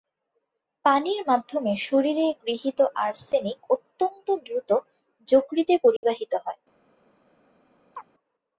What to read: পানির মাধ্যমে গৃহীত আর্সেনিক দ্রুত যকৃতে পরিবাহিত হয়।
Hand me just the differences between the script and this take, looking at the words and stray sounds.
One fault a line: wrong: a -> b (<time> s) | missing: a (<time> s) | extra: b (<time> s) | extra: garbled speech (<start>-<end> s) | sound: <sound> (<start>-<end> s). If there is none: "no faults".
extra: শরীরে (1.8 s)
extra: অত্যন্ত (3.7 s)
sound: dropout (6.0-6.0 s)
sound: chirp (7.9-8.1 s)